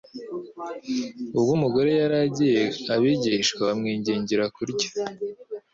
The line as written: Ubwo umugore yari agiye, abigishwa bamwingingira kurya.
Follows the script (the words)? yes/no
yes